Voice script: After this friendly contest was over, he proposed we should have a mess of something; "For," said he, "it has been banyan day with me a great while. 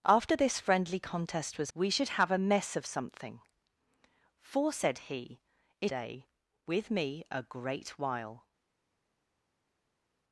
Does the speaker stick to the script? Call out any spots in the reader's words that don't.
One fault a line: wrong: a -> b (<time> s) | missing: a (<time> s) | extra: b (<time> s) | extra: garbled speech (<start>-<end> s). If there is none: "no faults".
missing: over he proposed (1.7 s)
missing: has been banyan (5.9 s)